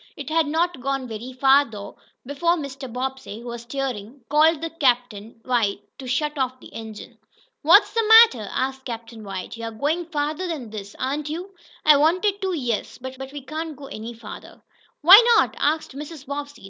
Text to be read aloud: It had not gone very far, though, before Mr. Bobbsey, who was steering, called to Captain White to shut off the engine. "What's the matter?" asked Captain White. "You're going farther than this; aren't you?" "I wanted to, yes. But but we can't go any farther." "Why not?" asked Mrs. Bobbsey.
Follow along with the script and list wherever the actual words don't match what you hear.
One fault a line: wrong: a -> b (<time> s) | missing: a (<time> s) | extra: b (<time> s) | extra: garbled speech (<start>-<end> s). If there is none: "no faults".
no faults